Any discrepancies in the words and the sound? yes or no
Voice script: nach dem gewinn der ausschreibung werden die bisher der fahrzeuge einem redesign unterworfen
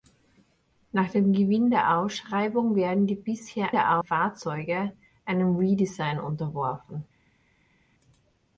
no